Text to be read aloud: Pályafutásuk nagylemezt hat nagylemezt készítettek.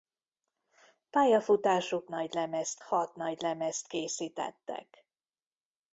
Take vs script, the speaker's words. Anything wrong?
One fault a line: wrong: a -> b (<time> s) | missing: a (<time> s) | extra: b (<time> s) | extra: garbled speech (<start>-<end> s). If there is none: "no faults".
no faults